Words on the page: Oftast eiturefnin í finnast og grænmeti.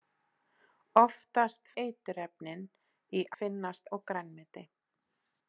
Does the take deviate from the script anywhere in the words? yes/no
no